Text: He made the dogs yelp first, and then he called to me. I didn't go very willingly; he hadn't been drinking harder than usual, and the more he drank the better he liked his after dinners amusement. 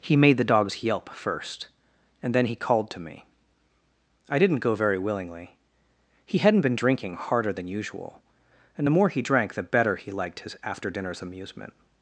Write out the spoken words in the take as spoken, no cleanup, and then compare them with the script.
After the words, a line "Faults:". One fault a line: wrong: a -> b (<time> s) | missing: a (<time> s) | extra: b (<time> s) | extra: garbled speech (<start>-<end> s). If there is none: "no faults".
He made the dogs yelp first, and then he called to me. I didn't go very willingly; he hadn't been drinking harder than usual, and the more he drank the better he liked his after dinners amusement.
Faults:
no faults